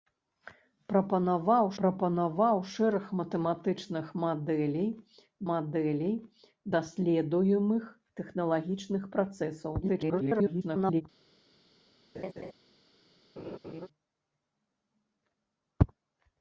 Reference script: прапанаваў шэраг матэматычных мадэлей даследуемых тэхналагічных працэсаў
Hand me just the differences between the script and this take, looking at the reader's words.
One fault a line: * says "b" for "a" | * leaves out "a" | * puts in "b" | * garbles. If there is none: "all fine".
* puts in "прапанаваў"
* puts in "мадэлей"
* garbles